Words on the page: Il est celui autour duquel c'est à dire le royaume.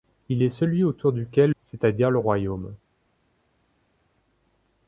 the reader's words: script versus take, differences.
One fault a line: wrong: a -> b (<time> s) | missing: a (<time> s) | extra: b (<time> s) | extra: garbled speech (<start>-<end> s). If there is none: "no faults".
no faults